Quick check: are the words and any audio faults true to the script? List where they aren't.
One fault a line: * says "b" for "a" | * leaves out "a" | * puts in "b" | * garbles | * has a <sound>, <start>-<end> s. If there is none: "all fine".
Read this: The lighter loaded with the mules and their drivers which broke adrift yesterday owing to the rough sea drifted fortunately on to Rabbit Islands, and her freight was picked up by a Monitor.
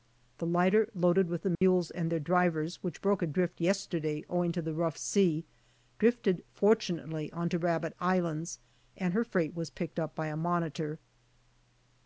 * has a dropout, 1.6-1.6 s